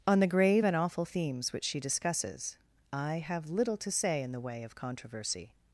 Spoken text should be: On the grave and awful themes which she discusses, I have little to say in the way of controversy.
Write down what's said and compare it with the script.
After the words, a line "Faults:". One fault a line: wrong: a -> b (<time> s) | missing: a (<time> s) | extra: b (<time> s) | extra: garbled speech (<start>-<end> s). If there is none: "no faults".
On the grave and awful themes which she discusses, I have little to say in the way of controversy.
Faults:
no faults